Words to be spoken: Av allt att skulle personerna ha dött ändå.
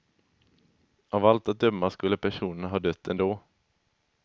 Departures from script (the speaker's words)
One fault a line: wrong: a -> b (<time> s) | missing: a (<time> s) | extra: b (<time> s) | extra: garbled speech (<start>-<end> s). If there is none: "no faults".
extra: döma (1.6 s)